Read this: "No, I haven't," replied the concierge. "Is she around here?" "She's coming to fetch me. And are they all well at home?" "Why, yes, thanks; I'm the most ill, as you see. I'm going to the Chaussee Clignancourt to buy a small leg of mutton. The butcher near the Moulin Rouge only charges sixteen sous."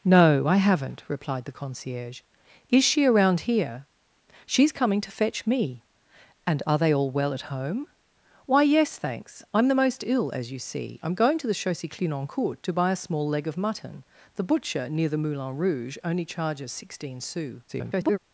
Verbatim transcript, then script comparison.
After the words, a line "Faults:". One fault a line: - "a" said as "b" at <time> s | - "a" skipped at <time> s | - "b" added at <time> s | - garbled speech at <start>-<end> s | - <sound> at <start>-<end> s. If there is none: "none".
"No, I haven't," replied the concierge. "Is she around here?" "She's coming to fetch me. And are they all well at home?" "Why, yes, thanks; I'm the most ill, as you see. I'm going to the Chaussee Clignancourt to buy a small leg of mutton. The butcher near the Moulin Rouge only charges sixteen sous." [garbled]
Faults:
- garbled speech at 17.7-18.2 s